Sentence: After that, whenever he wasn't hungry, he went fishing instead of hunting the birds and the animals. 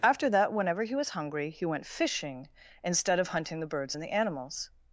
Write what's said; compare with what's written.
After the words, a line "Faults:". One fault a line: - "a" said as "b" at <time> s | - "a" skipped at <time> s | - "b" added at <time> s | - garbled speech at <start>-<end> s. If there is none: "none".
After that, whenever he was hungry, he went fishing instead of hunting the birds and the animals.
Faults:
- "wasn't" said as "was" at 0.9 s